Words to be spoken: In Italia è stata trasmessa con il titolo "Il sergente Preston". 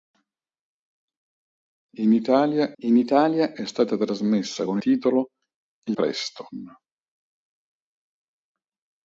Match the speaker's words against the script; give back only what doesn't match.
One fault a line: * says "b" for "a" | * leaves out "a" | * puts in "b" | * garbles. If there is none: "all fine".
* puts in "in Italia"
* leaves out "il"
* leaves out "sergente"